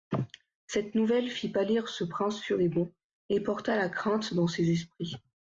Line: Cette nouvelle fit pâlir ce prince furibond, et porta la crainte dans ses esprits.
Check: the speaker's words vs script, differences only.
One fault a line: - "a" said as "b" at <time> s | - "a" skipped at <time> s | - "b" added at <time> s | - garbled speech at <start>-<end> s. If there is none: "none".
none